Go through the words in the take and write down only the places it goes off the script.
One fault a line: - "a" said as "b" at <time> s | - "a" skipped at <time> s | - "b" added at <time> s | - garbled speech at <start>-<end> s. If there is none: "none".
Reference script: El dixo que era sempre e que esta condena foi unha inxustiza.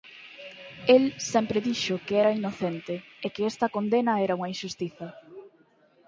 - "sempre" added at 1.3 s
- "sempre" said as "inocente" at 2.4 s
- "foi" said as "era" at 4.2 s